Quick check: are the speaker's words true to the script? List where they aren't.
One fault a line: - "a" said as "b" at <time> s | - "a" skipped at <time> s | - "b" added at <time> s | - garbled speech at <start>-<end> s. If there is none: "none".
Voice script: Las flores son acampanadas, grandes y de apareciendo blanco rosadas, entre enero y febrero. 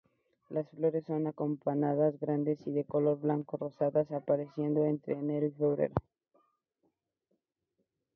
- "apareciendo" said as "color" at 2.9 s
- "apareciendo" added at 4.1 s